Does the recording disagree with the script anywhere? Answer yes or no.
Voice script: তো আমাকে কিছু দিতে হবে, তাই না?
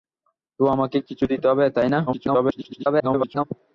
yes